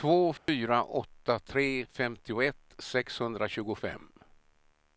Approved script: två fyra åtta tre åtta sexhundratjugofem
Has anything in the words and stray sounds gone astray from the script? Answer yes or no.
yes